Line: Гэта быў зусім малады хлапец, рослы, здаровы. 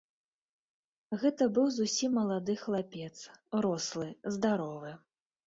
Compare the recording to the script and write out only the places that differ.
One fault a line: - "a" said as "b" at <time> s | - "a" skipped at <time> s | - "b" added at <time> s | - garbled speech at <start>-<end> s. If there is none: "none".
none